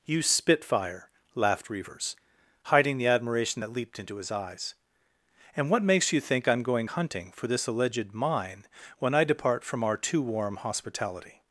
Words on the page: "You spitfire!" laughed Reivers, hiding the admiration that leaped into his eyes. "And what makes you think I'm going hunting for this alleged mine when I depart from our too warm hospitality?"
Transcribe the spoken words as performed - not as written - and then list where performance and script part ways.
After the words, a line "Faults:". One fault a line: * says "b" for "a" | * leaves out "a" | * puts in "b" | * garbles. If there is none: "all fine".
"You spitfire!" laughed Reivers, hiding the admiration that leaped into his eyes. "And what makes you think I'm going hunting for this alleged mine when I depart from our too warm hospitality?"
Faults:
all fine